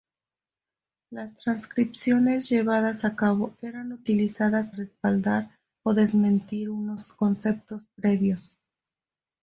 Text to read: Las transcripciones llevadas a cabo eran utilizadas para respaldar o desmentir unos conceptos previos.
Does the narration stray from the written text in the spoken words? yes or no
yes